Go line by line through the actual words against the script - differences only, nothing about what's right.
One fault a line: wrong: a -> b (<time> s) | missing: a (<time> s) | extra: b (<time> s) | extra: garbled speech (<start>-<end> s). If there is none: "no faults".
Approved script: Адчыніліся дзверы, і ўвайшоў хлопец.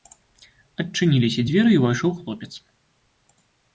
no faults